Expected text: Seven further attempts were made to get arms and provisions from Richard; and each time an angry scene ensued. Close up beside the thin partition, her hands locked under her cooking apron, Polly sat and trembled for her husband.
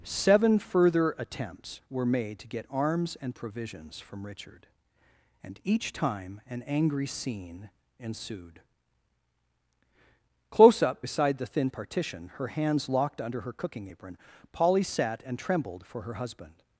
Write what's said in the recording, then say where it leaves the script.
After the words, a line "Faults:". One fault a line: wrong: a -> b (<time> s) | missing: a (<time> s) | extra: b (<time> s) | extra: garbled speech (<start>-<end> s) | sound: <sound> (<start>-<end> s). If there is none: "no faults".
Seven further attempts were made to get arms and provisions from Richard; and each time an angry scene ensued. Close up beside the thin partition, her hands locked under her cooking apron, Polly sat and trembled for her husband.
Faults:
no faults